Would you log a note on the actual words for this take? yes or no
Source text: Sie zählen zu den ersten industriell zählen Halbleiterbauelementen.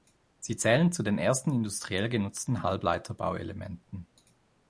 yes